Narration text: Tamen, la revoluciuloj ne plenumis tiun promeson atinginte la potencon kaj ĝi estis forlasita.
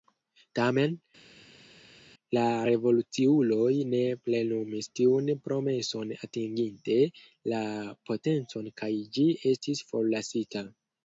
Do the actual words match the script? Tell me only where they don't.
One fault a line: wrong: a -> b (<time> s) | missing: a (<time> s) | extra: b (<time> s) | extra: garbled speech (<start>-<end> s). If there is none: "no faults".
no faults